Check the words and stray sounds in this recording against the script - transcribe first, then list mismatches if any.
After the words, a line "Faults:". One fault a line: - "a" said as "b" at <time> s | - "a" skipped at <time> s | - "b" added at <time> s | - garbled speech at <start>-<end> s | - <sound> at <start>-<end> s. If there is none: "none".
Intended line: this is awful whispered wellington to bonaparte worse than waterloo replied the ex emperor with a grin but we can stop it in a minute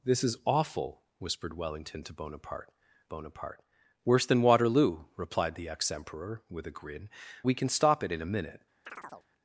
this is awful whispered wellington to bonaparte bonaparte worse than waterloo replied the ex emperor with a grin we can stop it in a minute
Faults:
- "bonaparte" added at 3.1 s
- "but" skipped at 7.1 s
- chirp at 8.9-9.3 s